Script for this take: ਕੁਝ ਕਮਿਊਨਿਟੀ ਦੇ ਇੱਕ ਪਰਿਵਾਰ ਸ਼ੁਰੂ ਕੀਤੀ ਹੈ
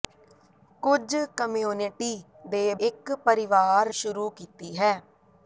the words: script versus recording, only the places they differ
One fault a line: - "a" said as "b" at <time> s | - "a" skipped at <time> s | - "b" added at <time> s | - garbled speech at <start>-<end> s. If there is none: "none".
none